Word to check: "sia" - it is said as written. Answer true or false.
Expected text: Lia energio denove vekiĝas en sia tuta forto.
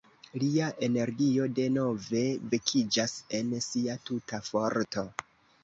true